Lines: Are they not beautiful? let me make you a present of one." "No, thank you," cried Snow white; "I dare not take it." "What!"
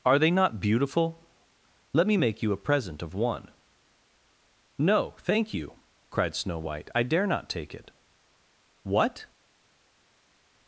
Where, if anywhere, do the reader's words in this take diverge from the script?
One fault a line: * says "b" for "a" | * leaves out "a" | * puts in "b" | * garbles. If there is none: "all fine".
all fine